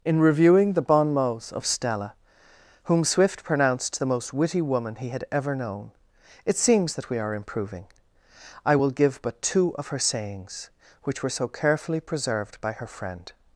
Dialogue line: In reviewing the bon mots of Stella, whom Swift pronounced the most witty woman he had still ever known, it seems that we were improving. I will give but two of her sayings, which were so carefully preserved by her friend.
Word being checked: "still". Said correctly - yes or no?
no